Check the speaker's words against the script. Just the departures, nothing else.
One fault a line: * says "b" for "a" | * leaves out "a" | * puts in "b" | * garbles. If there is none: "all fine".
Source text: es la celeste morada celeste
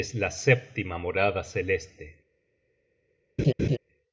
* says "sétima" for "celeste"